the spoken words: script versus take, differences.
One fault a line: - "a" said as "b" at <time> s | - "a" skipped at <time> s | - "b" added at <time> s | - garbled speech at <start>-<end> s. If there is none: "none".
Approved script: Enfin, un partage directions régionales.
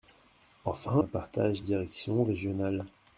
none